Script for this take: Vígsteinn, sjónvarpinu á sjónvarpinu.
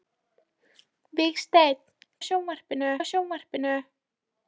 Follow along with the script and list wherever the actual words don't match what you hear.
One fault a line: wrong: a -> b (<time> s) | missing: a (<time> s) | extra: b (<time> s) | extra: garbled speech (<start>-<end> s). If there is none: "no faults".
no faults